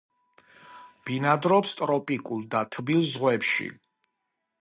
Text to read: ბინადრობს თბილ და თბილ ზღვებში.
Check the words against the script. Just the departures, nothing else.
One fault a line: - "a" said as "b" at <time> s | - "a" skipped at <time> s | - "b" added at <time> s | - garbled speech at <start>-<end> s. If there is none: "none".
- "თბილ" said as "ტროპიკულ" at 1.8 s